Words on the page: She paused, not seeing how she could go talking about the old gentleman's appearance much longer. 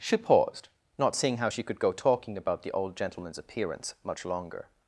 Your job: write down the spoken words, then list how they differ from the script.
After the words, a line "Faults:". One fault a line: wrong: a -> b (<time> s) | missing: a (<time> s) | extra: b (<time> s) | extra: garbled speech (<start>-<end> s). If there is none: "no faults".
She paused, not seeing how she could go talking about the old gentleman's appearance much longer.
Faults:
no faults